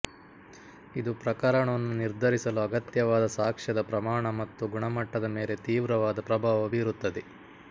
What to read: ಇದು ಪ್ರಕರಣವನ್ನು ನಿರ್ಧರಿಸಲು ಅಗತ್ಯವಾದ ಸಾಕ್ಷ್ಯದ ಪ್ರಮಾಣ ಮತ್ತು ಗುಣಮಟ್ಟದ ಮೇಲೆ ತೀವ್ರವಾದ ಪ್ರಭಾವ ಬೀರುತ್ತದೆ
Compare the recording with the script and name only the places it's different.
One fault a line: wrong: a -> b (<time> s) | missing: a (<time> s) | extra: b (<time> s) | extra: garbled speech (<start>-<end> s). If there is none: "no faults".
no faults